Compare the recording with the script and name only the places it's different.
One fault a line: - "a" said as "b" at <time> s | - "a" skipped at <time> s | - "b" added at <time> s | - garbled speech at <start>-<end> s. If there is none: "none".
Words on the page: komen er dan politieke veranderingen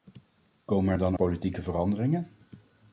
none